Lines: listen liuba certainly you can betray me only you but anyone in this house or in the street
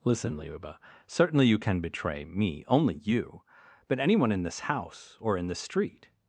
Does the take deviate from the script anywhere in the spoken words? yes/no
no